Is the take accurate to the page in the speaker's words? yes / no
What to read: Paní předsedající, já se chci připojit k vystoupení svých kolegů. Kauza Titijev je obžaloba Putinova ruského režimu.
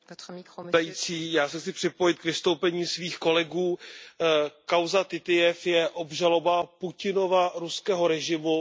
yes